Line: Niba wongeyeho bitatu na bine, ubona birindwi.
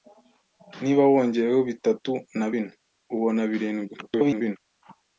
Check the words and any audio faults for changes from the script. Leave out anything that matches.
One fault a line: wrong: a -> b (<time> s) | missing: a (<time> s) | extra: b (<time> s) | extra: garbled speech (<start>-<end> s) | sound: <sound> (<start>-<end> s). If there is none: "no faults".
extra: garbled speech (4.0-4.6 s)